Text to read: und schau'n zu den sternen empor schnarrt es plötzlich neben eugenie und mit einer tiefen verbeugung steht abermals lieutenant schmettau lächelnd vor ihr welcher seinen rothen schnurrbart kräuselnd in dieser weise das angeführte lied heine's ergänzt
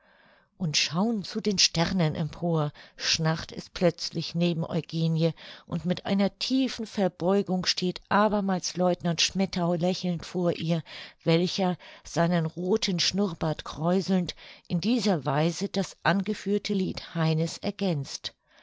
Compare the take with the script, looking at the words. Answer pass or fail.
pass